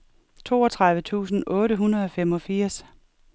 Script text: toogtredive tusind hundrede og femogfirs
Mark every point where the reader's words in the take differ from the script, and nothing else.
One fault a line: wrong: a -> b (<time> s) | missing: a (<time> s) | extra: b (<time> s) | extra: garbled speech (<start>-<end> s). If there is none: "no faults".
extra: otte (1.5 s)